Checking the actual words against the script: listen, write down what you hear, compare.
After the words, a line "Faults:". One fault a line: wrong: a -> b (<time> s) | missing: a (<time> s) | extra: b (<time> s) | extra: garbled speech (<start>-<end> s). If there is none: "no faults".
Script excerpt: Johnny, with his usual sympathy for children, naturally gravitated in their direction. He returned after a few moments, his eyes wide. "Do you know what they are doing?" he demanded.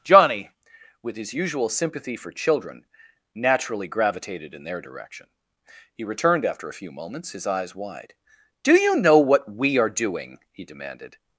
Johnny, with his usual sympathy for children, naturally gravitated in their direction. He returned after a few moments, his eyes wide. "Do you know what we are doing?" he demanded.
Faults:
wrong: they -> we (9.5 s)